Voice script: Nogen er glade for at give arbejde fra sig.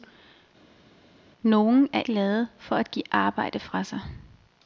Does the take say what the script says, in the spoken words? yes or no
yes